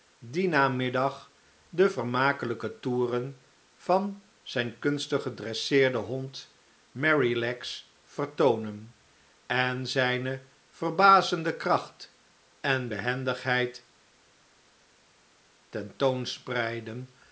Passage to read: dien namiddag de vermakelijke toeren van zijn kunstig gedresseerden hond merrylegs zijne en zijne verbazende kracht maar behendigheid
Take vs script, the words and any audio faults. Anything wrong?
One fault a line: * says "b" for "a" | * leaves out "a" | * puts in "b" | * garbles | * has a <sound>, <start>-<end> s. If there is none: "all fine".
* says "vertoonen" for "zijne"
* says "en" for "maar"